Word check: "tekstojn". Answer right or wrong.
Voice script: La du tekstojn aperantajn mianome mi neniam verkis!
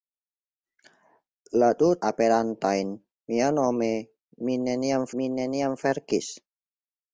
wrong